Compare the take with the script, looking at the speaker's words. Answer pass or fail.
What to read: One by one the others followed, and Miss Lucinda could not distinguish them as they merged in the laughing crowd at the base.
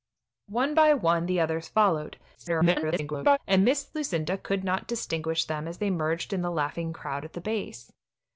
fail